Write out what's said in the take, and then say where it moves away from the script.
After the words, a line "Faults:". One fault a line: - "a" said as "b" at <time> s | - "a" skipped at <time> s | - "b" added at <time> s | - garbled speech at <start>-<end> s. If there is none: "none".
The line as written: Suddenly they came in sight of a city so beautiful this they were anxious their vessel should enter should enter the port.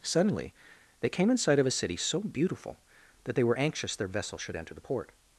Suddenly they came in sight of a city so beautiful that they were anxious their vessel should enter the port.
Faults:
- "this" said as "that" at 3.2 s
- "should enter" skipped at 4.8 s